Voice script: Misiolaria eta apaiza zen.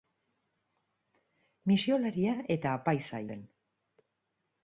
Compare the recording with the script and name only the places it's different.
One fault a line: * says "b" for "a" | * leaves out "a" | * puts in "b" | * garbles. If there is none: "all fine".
all fine